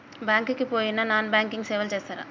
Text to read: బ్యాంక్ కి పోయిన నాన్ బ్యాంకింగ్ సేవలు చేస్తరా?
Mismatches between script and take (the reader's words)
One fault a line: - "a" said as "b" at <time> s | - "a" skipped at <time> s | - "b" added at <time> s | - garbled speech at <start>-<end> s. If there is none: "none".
none